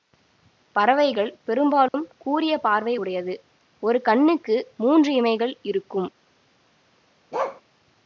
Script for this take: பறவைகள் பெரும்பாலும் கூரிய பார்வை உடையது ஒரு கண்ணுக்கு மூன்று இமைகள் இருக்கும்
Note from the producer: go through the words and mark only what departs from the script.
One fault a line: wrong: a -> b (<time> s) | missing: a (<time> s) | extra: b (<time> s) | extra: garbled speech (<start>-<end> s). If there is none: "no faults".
no faults